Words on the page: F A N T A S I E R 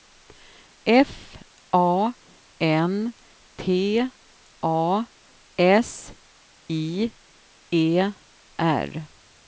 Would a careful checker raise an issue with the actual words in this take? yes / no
no